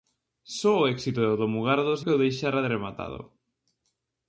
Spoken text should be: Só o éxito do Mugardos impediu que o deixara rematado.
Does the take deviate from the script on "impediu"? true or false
true